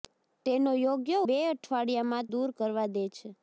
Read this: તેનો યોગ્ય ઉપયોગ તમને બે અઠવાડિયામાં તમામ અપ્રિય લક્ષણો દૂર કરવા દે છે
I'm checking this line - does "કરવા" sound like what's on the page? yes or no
yes